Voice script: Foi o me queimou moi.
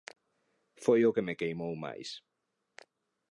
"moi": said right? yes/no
no